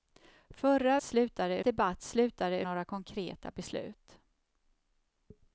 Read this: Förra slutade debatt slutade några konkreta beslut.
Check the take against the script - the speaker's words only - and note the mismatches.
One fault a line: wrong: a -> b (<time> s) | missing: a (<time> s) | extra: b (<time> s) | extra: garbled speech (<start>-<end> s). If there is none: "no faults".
no faults